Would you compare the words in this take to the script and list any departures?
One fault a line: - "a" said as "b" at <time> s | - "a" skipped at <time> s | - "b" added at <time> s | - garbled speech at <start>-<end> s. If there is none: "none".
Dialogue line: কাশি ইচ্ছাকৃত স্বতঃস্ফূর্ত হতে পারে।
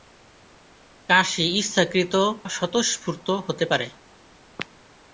none